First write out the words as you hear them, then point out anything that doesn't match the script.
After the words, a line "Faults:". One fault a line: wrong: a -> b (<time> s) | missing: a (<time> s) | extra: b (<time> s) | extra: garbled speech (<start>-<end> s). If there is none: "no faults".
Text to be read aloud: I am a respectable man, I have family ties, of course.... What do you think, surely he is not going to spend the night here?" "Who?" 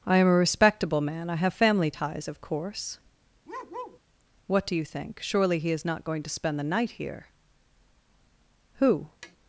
I am a respectable man, I have family ties, of course.... What do you think, surely he is not going to spend the night here?" "Who?"
Faults:
no faults